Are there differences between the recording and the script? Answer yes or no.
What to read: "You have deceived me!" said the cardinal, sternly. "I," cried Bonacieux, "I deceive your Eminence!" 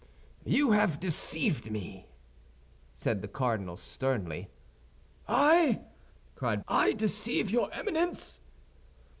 yes